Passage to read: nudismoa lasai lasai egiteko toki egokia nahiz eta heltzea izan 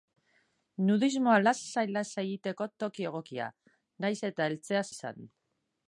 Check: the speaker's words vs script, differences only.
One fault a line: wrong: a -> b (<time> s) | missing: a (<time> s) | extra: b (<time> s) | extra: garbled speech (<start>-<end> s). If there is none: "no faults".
no faults